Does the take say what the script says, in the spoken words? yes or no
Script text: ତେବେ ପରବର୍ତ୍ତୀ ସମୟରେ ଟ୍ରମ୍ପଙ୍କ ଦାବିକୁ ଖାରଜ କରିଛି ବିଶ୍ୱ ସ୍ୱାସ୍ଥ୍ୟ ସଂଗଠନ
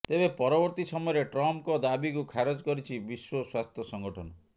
yes